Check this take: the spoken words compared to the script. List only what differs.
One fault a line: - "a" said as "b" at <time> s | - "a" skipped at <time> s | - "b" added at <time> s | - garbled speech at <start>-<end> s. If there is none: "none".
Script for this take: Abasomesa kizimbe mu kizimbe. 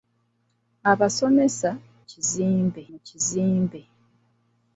none